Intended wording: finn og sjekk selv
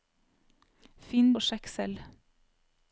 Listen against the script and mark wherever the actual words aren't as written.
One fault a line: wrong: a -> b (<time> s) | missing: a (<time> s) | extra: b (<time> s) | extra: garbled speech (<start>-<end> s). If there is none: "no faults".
no faults